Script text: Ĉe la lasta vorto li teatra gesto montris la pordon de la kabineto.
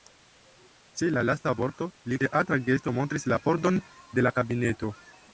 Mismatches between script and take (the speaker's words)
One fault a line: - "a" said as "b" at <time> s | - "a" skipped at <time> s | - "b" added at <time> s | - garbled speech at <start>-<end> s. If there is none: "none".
none